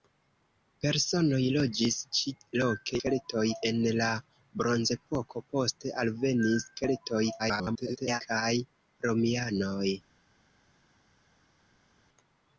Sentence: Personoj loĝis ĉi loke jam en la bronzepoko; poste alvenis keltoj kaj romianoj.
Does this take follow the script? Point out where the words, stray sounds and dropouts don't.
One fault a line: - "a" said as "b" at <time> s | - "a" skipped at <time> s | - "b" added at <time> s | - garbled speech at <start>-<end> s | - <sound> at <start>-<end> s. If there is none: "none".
- "jam" said as "keltoj" at 3.0 s
- garbled speech at 7.4-8.2 s